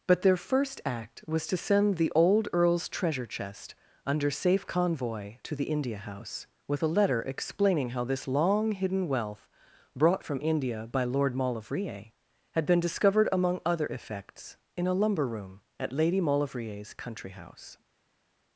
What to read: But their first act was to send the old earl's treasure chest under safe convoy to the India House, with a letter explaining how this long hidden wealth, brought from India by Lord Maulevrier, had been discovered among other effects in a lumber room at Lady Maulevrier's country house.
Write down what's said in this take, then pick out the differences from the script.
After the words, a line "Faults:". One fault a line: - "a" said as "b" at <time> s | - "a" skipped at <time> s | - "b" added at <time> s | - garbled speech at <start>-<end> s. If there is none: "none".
But their first act was to send the old earl's treasure chest under safe convoy to the India House, with a letter explaining how this long hidden wealth, brought from India by Lord Maulevrier, had been discovered among other effects in a lumber room at Lady Maulevrier's country house.
Faults:
none